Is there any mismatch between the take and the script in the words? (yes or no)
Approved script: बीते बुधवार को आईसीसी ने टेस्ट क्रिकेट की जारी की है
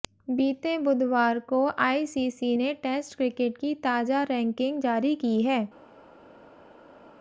yes